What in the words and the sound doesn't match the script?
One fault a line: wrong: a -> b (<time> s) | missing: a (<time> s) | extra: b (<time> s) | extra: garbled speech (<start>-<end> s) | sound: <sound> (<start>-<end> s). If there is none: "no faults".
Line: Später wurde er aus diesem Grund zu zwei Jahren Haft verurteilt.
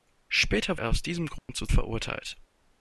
missing: wurde (0.8 s)
sound: dropout (1.4-1.5 s)
missing: zwei Jahren Haft (1.7 s)